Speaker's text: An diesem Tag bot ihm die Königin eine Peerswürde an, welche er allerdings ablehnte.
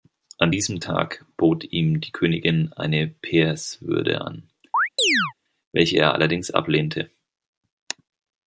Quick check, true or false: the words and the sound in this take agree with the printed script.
false